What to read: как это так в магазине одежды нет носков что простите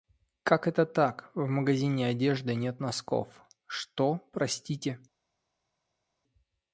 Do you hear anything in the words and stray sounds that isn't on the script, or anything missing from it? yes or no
no